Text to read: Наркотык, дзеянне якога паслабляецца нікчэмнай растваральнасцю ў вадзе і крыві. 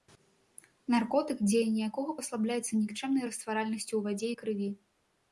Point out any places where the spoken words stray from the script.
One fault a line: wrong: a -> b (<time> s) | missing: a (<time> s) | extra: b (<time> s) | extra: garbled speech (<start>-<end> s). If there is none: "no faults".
no faults